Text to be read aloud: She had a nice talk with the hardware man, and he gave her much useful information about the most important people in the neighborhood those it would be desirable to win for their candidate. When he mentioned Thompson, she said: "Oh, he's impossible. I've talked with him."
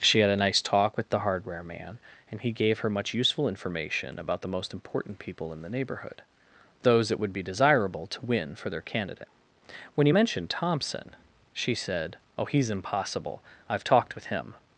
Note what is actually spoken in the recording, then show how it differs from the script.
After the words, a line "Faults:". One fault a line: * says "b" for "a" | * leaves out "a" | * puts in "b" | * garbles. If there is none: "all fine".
She had a nice talk with the hardware man, and he gave her much useful information about the most important people in the neighborhood those it would be desirable to win for their candidate. When he mentioned Thompson, she said: "Oh, he's impossible. I've talked with him."
Faults:
all fine